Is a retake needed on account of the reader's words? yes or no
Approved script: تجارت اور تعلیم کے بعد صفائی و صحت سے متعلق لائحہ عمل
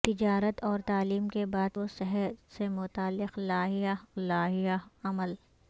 yes